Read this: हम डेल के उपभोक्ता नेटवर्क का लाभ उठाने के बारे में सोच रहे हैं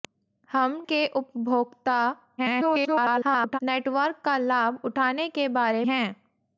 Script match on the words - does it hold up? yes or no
no